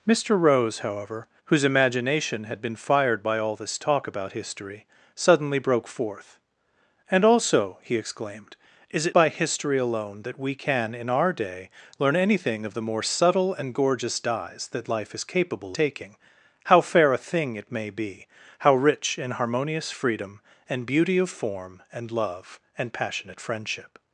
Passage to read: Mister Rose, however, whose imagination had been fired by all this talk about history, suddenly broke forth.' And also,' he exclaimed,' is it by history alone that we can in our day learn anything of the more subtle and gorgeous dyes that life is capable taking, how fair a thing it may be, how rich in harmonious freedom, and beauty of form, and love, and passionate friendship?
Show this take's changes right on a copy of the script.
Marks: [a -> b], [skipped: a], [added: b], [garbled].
Mister Rose, however, whose imagination had been fired by all this talk about history, suddenly broke forth.' And also,' he exclaimed,' is it by history alone that we can in our day learn anything of the more subtle and gorgeous dyes that life is capable taking, how fair a thing it may be, how rich in harmonious freedom, and beauty of form, and love, and passionate friendship?